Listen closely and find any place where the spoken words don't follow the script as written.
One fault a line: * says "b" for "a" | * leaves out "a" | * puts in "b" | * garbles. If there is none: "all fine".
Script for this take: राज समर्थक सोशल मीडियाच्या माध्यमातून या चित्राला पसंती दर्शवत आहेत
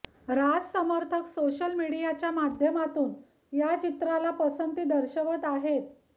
all fine